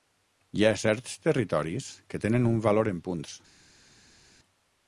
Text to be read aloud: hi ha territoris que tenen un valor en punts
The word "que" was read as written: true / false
true